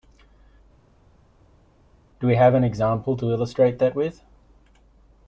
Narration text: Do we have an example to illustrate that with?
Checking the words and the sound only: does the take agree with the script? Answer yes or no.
yes